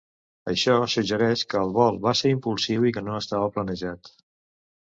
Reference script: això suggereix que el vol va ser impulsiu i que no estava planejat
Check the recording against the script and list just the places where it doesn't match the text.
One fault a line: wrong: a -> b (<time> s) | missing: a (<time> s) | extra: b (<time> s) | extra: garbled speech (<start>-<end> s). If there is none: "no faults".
no faults